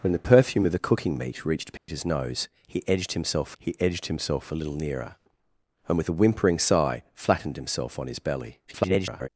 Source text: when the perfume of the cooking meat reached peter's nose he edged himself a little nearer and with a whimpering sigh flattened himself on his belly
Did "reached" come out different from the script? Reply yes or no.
no